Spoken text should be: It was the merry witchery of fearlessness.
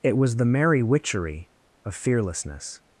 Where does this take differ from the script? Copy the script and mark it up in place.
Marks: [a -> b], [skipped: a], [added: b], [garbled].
It was the merry witchery of fearlessness.